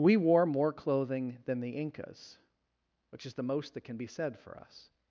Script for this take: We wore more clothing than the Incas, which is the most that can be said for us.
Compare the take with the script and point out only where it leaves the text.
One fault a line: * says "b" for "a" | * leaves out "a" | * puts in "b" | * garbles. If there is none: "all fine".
all fine